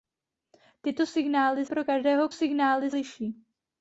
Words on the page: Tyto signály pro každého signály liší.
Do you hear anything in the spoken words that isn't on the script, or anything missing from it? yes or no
no